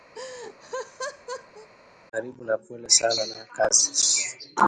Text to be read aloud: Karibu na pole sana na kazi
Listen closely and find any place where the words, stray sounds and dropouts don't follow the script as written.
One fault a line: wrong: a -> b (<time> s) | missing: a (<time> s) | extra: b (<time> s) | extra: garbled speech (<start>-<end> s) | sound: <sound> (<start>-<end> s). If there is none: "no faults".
sound: laugh (0.1-1.7 s)